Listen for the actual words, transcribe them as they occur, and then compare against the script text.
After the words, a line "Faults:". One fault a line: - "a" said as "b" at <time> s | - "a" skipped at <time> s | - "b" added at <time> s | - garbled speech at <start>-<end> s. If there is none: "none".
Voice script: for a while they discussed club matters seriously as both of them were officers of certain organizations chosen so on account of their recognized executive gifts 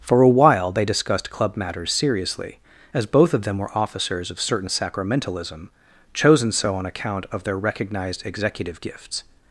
for a while they discussed club matters seriously as both of them were officers of certain sacramentalism chosen so on account of their recognized executive gifts
Faults:
- "organizations" said as "sacramentalism" at 4.7 s